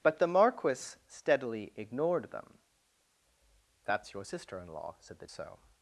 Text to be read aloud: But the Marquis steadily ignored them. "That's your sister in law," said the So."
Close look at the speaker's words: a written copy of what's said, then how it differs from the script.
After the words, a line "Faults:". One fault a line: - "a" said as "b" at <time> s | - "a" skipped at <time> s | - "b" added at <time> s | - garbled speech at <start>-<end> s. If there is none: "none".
But the Marquis steadily ignored them. "That's your sister in law," said the So."
Faults:
none